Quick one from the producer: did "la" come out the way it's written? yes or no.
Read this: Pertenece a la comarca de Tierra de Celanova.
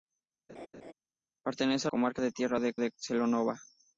no